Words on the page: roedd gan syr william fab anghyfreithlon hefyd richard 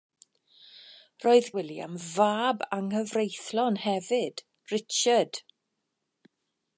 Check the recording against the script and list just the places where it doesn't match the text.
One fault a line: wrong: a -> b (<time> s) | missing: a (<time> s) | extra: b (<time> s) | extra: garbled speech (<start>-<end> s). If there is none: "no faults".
missing: gan syr (1.5 s)